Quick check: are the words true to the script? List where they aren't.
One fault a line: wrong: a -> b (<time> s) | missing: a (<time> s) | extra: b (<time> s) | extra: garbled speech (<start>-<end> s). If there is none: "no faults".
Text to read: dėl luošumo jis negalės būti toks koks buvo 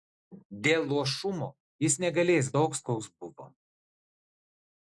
missing: būti (2.5 s)